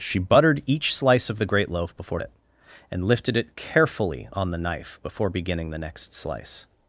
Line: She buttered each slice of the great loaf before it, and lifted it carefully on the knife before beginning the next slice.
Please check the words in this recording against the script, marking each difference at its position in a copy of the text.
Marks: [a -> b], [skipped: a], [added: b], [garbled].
She buttered each slice of the great loaf before it, and lifted it carefully on the knife before beginning the next slice.